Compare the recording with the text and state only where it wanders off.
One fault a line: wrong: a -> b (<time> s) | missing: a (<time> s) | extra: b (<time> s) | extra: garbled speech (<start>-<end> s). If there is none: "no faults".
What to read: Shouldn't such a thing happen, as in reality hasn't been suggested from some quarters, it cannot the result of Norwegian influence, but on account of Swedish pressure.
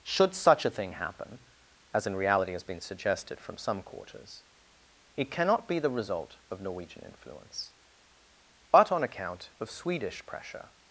wrong: Shouldn't -> Should (0.0 s)
wrong: hasn't -> has (2.5 s)
extra: be (5.7 s)